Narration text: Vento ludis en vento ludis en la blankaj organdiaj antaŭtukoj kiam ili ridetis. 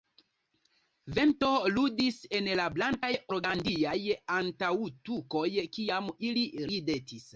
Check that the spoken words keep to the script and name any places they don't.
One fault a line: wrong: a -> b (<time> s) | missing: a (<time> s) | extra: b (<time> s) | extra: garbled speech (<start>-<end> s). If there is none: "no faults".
missing: vento ludis en (2.5 s)